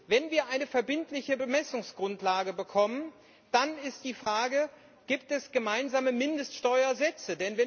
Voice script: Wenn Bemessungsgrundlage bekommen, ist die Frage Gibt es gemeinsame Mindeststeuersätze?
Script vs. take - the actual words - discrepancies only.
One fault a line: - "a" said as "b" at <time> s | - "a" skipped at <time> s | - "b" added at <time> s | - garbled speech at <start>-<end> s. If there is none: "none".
- "wir eine verbindliche" added at 0.3 s
- "dann" added at 3.5 s